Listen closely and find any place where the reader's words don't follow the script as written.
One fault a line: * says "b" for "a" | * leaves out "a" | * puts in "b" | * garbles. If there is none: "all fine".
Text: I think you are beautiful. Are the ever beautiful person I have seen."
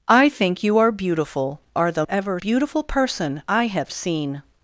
all fine